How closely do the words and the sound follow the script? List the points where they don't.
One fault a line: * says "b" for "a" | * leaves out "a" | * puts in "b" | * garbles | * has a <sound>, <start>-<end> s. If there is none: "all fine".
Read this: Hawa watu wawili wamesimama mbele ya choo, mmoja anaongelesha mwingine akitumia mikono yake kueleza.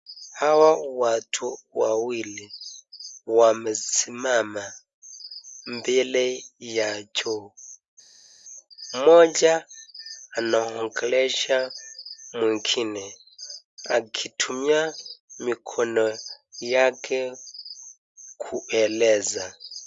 all fine